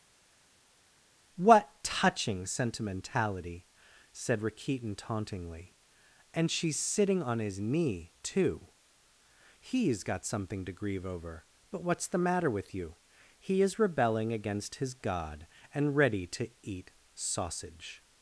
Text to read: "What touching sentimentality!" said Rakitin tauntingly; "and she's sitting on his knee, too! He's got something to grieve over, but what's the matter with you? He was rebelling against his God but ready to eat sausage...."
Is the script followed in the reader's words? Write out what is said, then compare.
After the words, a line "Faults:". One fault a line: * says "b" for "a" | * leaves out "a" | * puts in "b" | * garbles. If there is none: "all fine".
"What touching sentimentality!" said Rakitin tauntingly; "and she's sitting on his knee, too! He's got something to grieve over, but what's the matter with you? He is rebelling against his God and ready to eat sausage...."
Faults:
* says "is" for "was"
* says "and" for "but"